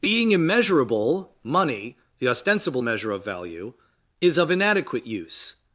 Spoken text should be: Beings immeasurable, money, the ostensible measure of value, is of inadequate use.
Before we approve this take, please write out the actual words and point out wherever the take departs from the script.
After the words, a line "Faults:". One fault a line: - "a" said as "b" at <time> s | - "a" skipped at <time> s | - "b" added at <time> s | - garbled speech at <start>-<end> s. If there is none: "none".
Being immeasurable, money, the ostensible measure of value, is of inadequate use.
Faults:
- "Beings" said as "Being" at 0.0 s